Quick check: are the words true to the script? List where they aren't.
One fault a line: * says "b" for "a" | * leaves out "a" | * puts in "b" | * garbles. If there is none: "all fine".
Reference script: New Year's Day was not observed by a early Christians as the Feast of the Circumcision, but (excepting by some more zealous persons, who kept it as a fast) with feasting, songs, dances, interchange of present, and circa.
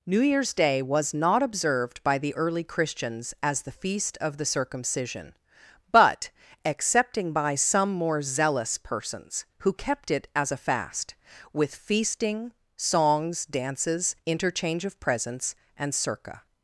* says "the" for "a"
* says "presents" for "present"